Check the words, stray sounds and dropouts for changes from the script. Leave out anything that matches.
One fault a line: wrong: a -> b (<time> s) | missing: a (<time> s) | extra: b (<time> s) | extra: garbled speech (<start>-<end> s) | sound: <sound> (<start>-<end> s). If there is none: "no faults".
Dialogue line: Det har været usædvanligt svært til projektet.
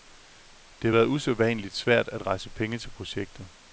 extra: at rejse penge (2.1 s)